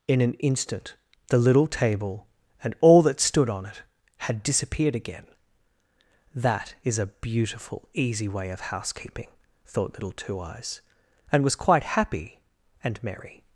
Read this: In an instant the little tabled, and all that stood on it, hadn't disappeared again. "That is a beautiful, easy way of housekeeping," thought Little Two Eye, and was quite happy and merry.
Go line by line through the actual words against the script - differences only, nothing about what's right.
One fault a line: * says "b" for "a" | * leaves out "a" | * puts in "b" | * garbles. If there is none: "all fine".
* says "table" for "tabled"
* says "had" for "hadn't"
* says "Eyes" for "Eye"